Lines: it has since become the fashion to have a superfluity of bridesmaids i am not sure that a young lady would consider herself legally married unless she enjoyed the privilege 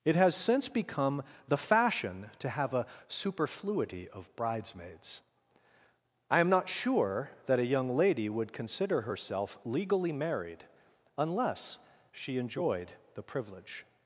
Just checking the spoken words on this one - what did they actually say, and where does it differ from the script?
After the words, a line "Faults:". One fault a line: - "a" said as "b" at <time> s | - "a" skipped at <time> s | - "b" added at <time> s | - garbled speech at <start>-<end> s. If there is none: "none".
it has since become the fashion to have a superfluity of bridesmaids i am not sure that a young lady would consider herself legally married unless she enjoyed the privilege
Faults:
none